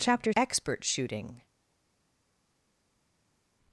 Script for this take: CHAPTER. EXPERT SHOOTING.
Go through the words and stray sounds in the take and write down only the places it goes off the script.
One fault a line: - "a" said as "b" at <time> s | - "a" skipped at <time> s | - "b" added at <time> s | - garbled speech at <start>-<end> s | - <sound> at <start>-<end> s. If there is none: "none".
none